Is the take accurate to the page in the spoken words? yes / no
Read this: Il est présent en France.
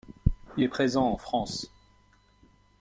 yes